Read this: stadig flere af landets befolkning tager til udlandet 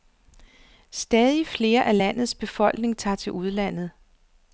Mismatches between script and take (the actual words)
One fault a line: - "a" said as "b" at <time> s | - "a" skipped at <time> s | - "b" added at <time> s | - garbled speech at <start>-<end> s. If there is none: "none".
none